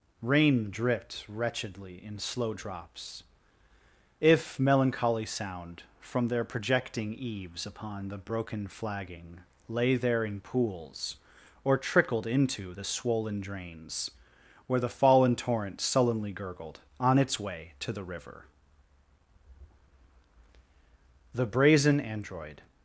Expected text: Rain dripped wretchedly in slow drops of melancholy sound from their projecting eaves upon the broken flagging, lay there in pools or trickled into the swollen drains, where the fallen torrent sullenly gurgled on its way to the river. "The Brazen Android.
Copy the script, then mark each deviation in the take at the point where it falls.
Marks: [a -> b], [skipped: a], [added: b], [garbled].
Rain dripped wretchedly in slow drops [of -> if] melancholy sound from their projecting eaves upon the broken flagging, lay there in pools or trickled into the swollen drains, where the fallen torrent sullenly gurgled on its way to the river. "The Brazen Android.